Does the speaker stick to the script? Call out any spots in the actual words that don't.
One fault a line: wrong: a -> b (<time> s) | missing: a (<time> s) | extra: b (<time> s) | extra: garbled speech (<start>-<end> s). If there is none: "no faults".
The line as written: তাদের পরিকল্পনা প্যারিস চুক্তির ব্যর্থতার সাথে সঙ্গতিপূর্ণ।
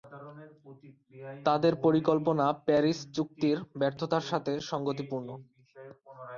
no faults